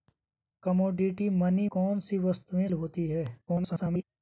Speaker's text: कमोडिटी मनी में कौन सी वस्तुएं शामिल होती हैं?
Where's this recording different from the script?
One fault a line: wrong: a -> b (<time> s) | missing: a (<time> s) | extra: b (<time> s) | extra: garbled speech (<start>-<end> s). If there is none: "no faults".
missing: में (1.7 s)
missing: शामिल (2.7 s)
extra: garbled speech (3.5-4.0 s)